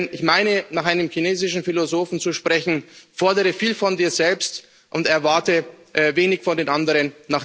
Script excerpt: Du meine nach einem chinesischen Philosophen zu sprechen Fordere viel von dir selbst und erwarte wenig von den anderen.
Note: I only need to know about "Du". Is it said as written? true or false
false